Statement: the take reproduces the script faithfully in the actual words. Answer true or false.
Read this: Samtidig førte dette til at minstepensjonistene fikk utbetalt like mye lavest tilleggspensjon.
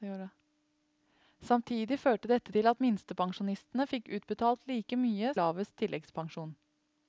true